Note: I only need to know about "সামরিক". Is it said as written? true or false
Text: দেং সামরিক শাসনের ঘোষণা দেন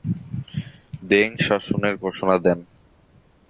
false